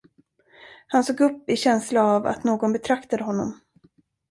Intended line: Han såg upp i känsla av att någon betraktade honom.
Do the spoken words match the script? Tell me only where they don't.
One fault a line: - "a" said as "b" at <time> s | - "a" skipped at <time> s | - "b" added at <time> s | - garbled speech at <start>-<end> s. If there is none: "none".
none